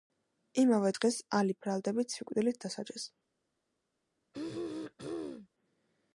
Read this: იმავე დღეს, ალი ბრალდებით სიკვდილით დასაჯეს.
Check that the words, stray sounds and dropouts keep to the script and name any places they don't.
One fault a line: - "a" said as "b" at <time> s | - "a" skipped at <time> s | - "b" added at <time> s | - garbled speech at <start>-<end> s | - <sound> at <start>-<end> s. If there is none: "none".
- throat clearing at 4.3-5.5 s